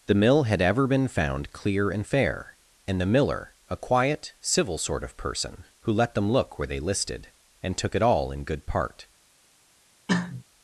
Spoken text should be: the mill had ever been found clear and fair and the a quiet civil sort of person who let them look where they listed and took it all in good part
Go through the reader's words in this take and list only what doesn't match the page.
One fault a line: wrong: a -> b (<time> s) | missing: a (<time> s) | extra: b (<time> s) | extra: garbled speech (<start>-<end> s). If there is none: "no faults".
extra: miller (3.1 s)